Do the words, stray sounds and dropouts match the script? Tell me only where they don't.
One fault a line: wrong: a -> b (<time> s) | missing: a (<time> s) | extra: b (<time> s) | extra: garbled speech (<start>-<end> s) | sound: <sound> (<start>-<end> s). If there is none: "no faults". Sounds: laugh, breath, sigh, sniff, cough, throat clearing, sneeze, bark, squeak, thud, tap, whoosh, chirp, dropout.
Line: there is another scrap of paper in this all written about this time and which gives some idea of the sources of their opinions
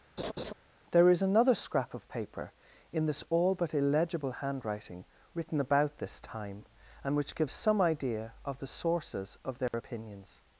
sound: laugh (0.2-0.5 s)
extra: but illegible handwriting (3.6 s)
sound: dropout (9.7-9.7 s)